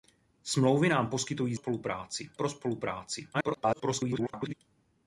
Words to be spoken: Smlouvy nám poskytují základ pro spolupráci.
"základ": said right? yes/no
no